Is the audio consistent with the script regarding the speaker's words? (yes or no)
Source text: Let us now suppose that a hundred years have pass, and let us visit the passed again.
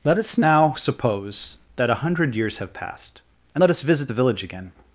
no